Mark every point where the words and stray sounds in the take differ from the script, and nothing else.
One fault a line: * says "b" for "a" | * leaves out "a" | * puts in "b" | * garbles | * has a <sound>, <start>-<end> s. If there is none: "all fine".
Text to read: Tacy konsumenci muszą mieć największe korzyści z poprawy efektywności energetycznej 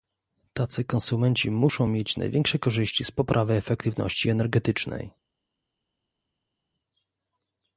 all fine